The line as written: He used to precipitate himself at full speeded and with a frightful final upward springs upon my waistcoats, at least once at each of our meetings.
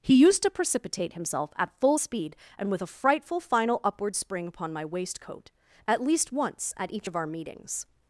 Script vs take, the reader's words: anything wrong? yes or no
yes